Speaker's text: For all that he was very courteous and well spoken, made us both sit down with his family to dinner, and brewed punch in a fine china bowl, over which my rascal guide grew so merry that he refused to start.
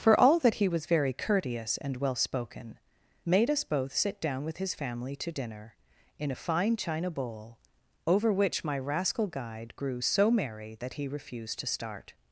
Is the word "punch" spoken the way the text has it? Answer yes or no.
no